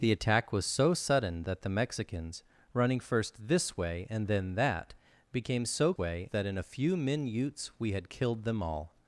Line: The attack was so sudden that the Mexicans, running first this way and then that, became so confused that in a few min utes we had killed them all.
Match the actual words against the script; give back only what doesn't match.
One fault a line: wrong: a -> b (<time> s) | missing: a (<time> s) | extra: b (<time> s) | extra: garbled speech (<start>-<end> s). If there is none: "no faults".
wrong: confused -> way (6.0 s)